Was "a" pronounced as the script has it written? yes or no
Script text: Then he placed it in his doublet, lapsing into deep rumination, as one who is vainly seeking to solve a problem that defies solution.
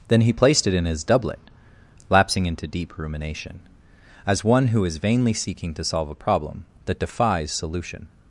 yes